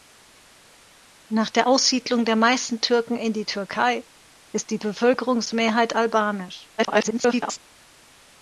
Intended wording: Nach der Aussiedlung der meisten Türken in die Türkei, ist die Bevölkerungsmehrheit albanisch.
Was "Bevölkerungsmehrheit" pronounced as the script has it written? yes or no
yes